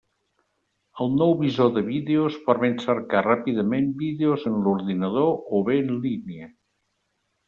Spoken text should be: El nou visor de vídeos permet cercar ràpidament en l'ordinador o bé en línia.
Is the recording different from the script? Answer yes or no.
yes